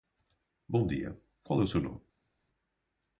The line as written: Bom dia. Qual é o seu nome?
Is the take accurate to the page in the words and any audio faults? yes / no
yes